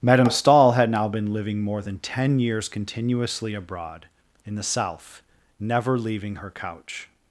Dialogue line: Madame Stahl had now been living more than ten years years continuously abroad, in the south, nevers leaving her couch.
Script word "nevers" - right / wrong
wrong